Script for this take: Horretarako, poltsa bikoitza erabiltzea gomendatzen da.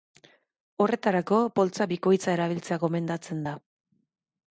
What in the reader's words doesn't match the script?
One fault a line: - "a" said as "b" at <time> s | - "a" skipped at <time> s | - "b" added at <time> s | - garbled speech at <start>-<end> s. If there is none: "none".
none